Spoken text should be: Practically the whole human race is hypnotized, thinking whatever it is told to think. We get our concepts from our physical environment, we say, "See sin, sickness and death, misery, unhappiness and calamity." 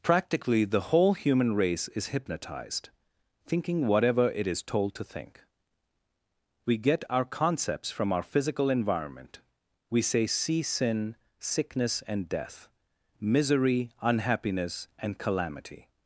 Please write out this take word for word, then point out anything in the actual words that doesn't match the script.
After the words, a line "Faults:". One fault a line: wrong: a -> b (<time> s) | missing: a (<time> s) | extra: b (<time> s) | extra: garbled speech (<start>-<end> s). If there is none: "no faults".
Practically the whole human race is hypnotized, thinking whatever it is told to think. We get our concepts from our physical environment, we say, "See sin, sickness and death, misery, unhappiness and calamity."
Faults:
no faults